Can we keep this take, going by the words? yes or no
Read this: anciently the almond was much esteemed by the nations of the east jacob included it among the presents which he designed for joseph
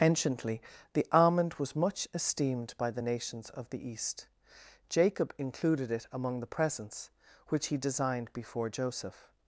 no